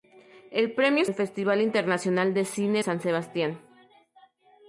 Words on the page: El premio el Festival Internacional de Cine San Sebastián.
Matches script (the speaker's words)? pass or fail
pass